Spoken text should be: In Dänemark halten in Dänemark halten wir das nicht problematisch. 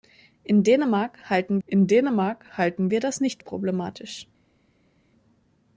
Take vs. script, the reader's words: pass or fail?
pass